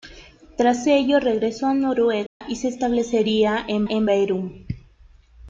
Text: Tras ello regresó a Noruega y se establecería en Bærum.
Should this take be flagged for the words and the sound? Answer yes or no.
yes